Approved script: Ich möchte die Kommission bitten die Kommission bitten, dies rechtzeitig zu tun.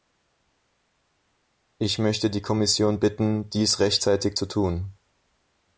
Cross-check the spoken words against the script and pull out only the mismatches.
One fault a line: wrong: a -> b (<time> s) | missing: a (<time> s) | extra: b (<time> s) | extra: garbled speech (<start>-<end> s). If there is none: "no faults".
missing: die Kommission bitten (3.5 s)